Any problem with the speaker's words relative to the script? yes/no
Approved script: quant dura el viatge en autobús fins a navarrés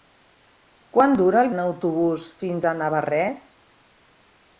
yes